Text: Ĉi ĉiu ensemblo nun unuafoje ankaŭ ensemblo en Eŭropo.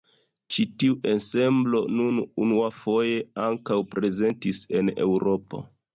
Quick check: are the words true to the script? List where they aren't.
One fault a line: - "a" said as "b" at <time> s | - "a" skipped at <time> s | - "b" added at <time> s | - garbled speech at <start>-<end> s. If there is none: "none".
- "ĉiu" said as "tiu" at 0.8 s
- "ensemblo" said as "prezentis" at 3.9 s